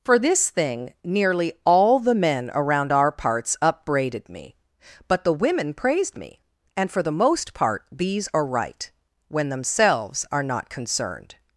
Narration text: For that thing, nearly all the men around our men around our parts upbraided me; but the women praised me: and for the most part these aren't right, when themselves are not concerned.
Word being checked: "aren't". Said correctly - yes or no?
no